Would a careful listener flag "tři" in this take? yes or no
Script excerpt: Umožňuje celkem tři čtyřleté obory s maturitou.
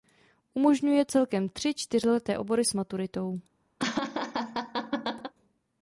no